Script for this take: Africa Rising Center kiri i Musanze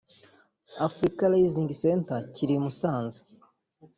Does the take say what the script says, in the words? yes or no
yes